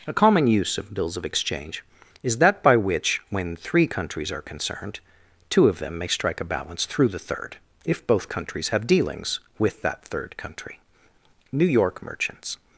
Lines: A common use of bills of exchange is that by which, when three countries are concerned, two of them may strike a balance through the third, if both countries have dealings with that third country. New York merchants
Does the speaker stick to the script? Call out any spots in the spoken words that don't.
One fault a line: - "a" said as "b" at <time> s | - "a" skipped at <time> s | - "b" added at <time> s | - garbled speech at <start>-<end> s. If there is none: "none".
none